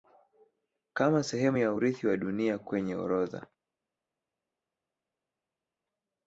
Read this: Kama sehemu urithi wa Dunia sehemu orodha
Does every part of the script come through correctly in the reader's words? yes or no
no